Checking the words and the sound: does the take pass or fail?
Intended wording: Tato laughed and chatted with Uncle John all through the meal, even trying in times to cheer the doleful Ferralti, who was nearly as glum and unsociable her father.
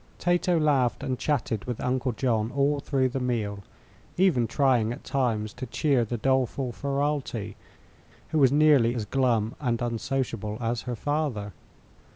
fail